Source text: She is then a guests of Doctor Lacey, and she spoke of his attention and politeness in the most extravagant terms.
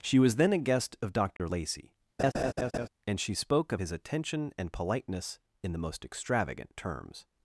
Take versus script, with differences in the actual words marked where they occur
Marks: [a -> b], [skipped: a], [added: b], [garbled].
She [is -> was] then a [guests -> guest] of Doctor Lacey, and she spoke of his attention and politeness in the most extravagant terms.